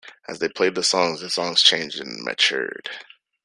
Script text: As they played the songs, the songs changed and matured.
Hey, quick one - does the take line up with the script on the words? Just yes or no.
yes